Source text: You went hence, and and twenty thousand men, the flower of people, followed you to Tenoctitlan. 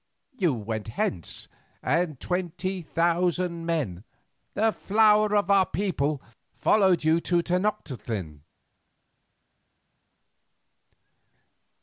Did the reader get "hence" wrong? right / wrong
right